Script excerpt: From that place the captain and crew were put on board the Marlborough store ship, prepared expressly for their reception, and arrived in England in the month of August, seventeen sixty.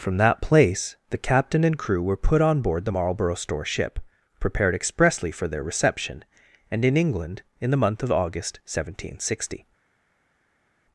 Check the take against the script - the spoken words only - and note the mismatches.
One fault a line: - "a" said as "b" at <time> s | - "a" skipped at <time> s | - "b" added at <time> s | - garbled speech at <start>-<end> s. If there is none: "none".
- "arrived" skipped at 6.8 s